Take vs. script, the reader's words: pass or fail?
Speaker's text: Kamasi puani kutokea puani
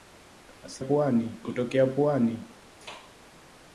pass